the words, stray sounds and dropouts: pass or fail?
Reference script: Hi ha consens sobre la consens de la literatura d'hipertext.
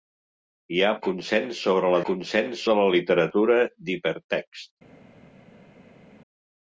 pass